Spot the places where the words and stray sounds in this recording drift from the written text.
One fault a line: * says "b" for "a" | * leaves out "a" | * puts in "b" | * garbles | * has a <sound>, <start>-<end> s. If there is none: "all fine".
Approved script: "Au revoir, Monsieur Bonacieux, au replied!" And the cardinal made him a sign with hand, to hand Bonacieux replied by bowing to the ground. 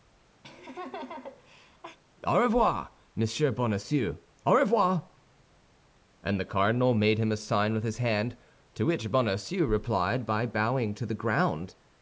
* has a laugh, 0.4-2.0 s
* says "revoir" for "replied"
* puts in "his"
* says "which" for "hand"